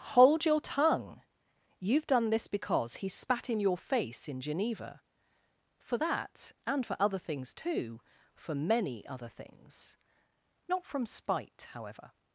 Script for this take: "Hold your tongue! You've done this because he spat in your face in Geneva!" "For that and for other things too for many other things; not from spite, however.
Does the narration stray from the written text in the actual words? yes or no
no